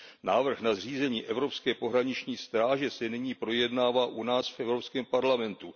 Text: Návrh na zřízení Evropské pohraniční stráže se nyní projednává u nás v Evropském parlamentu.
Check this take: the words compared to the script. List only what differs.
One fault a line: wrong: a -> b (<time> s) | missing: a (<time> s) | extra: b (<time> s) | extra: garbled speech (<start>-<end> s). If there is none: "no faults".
no faults